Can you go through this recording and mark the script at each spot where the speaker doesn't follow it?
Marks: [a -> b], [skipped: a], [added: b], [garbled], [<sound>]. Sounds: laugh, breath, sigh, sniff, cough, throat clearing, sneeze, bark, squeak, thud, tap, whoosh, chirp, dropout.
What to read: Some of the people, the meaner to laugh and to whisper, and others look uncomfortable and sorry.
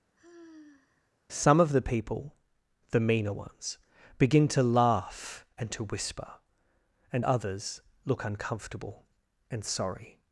[sigh] Some of the people, the meaner [added: ones begin] to laugh and to whisper, and others look uncomfortable and sorry.